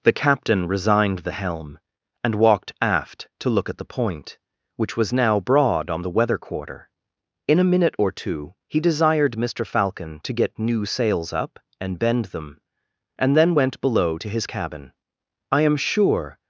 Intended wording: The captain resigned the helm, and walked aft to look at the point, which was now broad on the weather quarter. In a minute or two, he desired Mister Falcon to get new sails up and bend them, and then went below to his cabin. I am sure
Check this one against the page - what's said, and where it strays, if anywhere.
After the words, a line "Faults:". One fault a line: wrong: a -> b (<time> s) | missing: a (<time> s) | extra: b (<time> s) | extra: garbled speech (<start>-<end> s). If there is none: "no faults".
The captain resigned the helm, and walked aft to look at the point, which was now broad on the weather quarter. In a minute or two, he desired Mister Falcon to get new sails up and bend them, and then went below to his cabin. I am sure
Faults:
no faults